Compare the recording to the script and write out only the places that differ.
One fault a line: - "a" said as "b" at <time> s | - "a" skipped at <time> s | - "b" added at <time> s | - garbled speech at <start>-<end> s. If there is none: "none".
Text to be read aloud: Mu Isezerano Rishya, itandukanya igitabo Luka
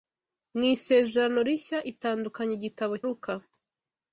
none